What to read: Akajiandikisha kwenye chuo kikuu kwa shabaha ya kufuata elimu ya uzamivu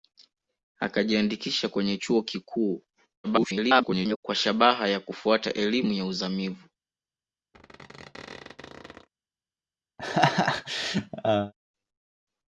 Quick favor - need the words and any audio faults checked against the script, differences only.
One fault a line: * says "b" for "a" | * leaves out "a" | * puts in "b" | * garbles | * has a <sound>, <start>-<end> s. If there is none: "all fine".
* garbles
* has a squeak, 7.5-9.1 s
* has a laugh, 10.0-11.5 s